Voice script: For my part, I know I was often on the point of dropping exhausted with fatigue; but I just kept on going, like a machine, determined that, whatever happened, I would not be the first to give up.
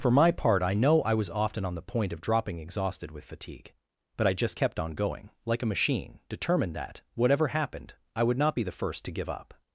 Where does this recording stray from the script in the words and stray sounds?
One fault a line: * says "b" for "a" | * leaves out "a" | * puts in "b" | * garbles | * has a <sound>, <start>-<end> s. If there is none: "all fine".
all fine